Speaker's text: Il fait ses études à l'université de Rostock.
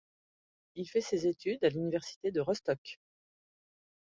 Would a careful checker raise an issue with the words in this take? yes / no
no